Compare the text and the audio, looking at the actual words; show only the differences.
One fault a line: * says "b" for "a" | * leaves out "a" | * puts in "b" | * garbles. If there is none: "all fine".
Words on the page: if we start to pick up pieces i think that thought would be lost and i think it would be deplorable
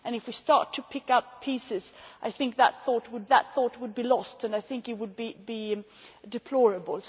* puts in "that thought would"